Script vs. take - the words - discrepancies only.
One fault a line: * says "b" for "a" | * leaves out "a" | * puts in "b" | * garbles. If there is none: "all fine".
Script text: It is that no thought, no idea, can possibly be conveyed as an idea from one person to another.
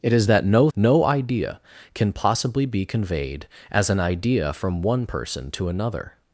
* leaves out "thought"